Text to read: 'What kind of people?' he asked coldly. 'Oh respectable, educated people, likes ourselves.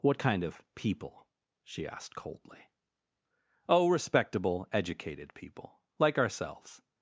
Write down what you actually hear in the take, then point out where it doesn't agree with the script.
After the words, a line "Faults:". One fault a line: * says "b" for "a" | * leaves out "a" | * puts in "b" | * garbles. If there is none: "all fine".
'What kind of people?' she asked coldly. 'Oh respectable, educated people, like ourselves.
Faults:
* says "she" for "he"
* says "like" for "likes"